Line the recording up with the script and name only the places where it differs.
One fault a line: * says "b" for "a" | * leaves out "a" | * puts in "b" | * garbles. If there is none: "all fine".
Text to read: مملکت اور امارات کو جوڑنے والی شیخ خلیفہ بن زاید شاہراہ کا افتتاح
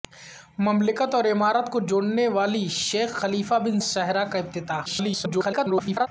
* leaves out "زاید"
* garbles